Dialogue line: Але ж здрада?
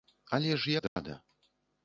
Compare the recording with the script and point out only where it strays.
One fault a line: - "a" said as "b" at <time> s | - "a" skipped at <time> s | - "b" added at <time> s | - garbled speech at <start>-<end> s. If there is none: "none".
none